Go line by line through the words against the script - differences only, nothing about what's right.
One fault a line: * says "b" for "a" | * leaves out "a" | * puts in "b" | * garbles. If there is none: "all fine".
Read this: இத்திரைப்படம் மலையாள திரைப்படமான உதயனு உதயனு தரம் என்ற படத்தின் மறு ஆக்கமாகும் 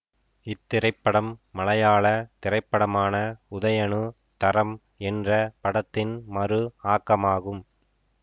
* leaves out "உதயனு"